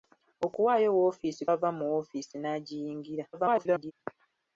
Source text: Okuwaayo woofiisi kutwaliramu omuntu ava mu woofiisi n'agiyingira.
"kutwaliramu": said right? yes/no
no